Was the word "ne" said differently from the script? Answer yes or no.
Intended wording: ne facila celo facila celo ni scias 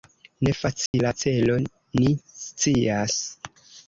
no